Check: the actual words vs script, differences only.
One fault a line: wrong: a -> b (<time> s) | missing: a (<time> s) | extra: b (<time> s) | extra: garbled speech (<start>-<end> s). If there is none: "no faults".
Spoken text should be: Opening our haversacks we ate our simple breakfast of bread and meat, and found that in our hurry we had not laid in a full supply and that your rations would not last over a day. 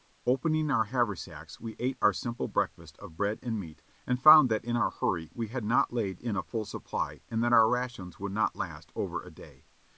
wrong: your -> our (7.5 s)